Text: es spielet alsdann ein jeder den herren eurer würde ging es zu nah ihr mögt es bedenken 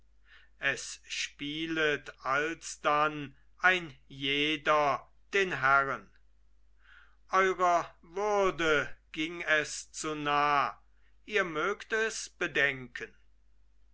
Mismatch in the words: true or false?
false